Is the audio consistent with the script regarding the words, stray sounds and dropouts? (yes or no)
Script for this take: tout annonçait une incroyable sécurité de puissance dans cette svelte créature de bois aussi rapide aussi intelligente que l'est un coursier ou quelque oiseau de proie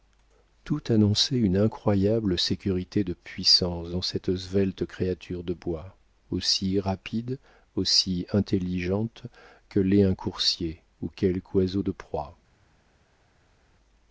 yes